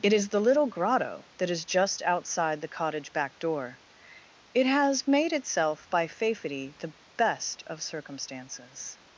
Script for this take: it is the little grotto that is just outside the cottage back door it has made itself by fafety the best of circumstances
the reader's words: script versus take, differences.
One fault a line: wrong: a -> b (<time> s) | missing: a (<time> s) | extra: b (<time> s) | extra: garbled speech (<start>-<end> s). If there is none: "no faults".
no faults